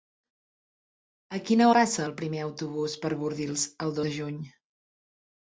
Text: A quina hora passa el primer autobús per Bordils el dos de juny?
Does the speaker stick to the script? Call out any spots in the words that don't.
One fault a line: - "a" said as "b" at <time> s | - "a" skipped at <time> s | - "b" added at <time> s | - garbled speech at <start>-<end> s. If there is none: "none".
- "hora" skipped at 1.7 s
- "dos" skipped at 4.0 s